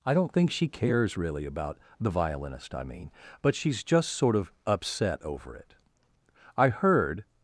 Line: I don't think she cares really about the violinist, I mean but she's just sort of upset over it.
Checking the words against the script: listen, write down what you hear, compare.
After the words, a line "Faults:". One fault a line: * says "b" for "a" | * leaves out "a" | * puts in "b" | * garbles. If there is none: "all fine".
I don't think she cares really about the violinist, I mean but she's just sort of upset over it. I heard
Faults:
* puts in "I heard"